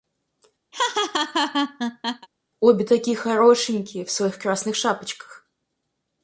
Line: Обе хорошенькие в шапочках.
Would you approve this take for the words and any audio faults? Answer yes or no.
no